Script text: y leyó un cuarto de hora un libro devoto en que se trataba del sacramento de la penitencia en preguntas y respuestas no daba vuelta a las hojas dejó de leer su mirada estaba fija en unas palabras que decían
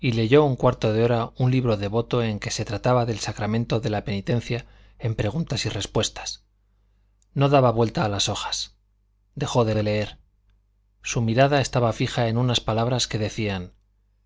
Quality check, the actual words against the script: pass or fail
fail